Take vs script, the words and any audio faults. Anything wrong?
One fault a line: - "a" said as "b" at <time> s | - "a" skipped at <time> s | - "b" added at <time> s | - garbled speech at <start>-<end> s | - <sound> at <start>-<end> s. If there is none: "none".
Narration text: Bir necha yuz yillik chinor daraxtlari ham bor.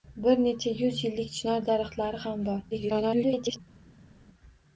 - garbled speech at 2.7-3.6 s